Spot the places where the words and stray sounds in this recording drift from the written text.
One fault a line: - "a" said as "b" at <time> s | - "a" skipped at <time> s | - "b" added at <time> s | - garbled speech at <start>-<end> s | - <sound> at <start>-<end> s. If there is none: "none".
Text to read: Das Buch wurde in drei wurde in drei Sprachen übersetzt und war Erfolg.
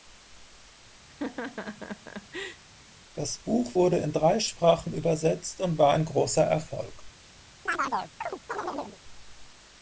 - laugh at 1.1-2.6 s
- "wurde in drei" skipped at 4.4 s
- "ein großer" added at 5.9 s
- chirp at 7.7-9.0 s